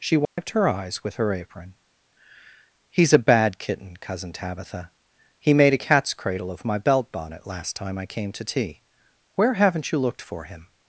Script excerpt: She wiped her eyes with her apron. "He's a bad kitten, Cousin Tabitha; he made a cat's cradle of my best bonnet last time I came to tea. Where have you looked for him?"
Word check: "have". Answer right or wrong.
wrong